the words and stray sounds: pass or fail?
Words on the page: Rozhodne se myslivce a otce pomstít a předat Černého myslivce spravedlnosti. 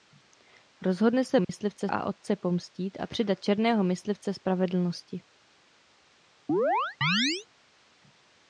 fail